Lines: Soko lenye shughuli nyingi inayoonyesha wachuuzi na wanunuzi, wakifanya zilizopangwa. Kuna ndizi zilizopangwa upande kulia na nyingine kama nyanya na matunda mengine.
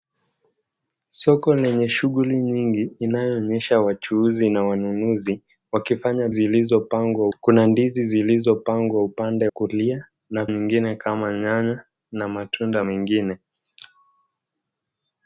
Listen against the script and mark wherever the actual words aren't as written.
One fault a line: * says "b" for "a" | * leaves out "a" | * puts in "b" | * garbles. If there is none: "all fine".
all fine